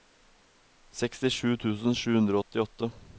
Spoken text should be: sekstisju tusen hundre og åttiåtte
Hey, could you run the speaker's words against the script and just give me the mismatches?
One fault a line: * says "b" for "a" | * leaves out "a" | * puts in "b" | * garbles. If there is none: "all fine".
* puts in "sju"